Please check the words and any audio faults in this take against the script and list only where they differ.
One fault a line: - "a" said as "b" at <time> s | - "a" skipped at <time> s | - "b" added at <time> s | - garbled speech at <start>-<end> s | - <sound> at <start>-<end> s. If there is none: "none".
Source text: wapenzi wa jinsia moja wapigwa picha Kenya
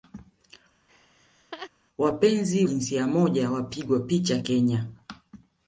- laugh at 0.9-1.7 s
- "wa" skipped at 2.6 s